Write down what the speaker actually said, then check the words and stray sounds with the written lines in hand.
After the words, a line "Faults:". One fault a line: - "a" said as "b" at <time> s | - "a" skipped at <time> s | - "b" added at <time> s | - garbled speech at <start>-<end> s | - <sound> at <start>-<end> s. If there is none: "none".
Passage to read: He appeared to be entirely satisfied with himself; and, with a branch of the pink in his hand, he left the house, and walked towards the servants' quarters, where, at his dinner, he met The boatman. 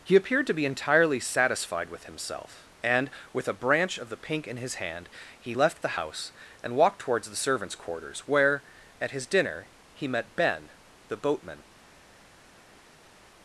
He appeared to be entirely satisfied with himself; and, with a branch of the pink in his hand, he left the house, and walked towards the servants' quarters, where, at his dinner, he met Ben, the boatman.
Faults:
- "Ben" added at 10.4 s